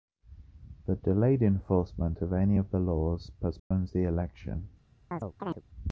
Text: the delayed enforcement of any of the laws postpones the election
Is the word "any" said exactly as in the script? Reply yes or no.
yes